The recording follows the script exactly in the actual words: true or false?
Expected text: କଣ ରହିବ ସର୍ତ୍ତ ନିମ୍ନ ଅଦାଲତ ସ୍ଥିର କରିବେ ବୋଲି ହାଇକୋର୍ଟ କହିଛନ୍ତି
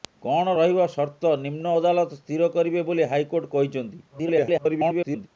false